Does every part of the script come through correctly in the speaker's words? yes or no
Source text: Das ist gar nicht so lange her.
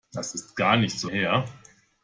no